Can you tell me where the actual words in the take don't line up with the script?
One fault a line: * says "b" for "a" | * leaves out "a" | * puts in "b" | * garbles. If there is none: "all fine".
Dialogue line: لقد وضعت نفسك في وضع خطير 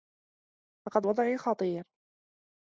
* leaves out "وضعت نفسك في"